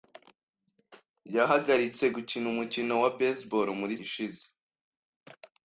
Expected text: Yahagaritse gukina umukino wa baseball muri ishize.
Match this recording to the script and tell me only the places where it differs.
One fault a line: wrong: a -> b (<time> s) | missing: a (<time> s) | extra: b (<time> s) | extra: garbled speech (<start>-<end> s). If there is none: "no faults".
no faults